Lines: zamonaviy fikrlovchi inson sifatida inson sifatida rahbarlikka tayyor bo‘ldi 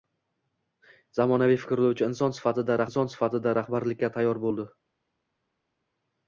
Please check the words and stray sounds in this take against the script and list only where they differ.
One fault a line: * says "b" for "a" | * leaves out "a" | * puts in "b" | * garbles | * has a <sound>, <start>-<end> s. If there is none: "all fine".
all fine